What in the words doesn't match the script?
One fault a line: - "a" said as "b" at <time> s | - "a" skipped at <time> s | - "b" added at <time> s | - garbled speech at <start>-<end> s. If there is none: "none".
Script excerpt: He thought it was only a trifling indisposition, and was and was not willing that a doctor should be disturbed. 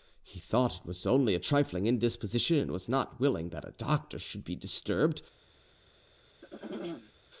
- "and was" skipped at 2.9 s